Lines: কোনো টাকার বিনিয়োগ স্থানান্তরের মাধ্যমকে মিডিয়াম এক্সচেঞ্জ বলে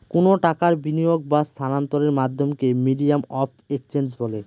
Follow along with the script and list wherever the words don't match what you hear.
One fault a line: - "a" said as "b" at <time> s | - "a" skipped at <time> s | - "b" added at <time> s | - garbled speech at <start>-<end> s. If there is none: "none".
- "বা" added at 1.3 s
- "অফ" added at 3.4 s